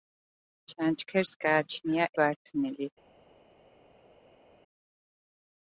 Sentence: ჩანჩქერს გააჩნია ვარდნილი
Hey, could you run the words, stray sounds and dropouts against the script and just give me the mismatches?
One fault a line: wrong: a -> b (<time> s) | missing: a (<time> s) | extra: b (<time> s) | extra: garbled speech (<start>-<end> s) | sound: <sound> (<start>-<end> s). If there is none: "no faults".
no faults